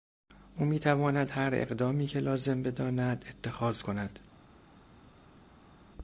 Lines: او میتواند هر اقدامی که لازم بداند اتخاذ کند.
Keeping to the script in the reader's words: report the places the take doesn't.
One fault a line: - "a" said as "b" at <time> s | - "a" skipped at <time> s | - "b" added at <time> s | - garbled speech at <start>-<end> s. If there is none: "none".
none